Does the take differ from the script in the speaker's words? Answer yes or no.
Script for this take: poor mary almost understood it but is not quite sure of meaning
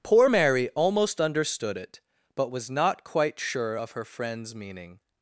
yes